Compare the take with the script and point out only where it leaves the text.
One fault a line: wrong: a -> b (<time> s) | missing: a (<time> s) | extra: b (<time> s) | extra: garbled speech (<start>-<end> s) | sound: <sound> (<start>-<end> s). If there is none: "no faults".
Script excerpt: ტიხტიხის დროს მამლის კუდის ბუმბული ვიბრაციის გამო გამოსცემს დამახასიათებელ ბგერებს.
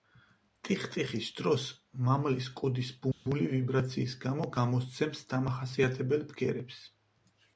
sound: dropout (3.1-3.3 s)